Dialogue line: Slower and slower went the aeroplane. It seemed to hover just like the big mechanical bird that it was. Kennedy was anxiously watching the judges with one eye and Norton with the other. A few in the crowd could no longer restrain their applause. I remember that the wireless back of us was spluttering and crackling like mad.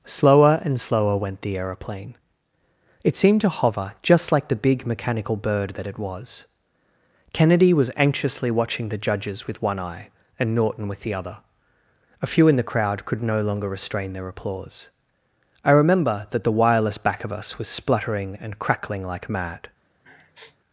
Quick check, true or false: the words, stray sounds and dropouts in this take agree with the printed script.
false